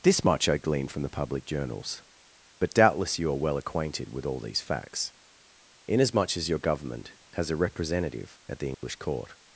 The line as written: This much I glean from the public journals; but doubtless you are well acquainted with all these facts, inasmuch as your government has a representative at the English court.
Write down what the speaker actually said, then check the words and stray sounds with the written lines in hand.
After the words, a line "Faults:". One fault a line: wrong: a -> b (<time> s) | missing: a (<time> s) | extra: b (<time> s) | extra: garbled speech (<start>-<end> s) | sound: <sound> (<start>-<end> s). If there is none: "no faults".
This much I glean from the public journals; but doubtless you are well acquainted with all these facts, inasmuch as your government has a representative at the English court.
Faults:
sound: dropout (8.7-8.8 s)